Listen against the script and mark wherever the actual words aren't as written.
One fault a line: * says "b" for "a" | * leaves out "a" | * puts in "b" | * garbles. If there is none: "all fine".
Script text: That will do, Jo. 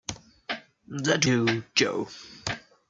* leaves out "will"